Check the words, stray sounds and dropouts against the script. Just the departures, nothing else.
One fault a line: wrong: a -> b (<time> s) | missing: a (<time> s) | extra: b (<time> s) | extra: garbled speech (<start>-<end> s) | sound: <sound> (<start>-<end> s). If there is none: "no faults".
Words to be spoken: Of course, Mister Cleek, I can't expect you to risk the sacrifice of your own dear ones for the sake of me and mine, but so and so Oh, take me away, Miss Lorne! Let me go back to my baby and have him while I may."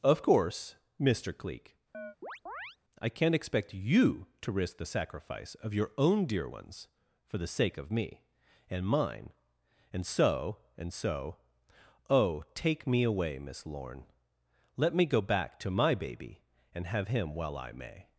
sound: chirp (1.9-2.8 s)
wrong: but -> and (9.9 s)